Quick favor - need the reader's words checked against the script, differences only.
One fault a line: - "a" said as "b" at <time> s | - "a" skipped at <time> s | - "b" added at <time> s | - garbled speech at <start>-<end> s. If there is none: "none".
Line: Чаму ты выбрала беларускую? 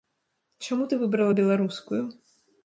none